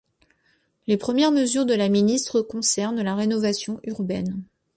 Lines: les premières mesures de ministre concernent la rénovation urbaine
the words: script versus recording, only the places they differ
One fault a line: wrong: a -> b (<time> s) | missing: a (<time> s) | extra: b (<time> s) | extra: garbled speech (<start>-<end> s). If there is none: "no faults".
extra: la (1.8 s)